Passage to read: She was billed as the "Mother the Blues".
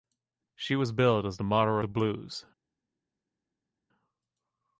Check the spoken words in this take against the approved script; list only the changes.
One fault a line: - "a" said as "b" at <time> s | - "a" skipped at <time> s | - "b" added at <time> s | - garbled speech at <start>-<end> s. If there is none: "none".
none